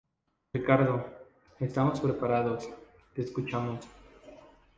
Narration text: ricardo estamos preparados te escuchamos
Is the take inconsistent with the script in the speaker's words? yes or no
no